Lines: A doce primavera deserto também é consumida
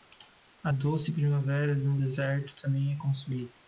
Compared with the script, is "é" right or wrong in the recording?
right